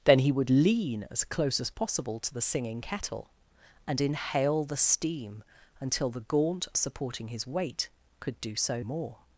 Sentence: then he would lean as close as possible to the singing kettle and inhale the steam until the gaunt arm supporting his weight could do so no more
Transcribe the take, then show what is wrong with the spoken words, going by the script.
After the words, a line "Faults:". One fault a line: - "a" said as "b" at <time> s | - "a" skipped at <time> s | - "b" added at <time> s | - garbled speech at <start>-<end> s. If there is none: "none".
then he would lean as close as possible to the singing kettle and inhale the steam until the gaunt supporting his weight could do so more
Faults:
- "arm" skipped at 6.7 s
- "no" skipped at 8.8 s